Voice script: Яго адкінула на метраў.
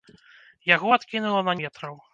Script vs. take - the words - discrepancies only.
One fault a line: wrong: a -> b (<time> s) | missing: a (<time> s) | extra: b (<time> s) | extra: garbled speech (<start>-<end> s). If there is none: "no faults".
no faults